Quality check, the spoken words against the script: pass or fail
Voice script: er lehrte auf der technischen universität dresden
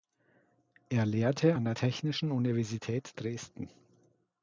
fail